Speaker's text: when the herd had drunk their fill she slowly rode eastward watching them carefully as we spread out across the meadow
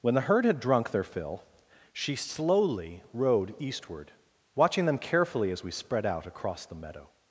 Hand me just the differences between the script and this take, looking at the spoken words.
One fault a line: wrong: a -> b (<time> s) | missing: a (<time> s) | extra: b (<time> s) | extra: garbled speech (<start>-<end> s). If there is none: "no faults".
no faults